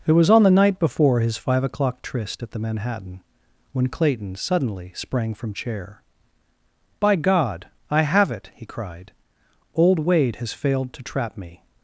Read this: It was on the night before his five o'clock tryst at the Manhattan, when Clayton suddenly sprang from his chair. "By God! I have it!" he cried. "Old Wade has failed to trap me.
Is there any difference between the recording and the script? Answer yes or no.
yes